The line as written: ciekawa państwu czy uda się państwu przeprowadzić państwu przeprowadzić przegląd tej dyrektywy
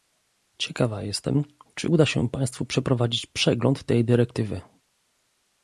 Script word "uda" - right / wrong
right